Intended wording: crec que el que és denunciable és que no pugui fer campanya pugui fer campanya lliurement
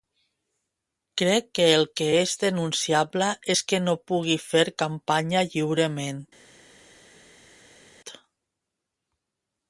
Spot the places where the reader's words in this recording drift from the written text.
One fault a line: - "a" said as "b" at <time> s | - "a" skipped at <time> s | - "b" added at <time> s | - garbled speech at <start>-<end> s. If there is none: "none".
- "pugui fer campanya" skipped at 5.4 s